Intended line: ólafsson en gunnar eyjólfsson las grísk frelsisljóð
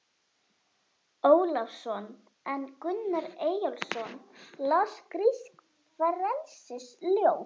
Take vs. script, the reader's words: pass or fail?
pass